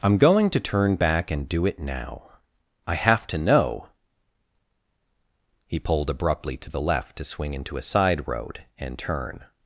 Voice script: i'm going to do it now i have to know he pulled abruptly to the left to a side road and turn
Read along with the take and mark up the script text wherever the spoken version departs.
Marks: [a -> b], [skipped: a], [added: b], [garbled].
i'm going to [added: turn back and] do it now i have to know he pulled abruptly to the left to [added: swing into] a side road and turn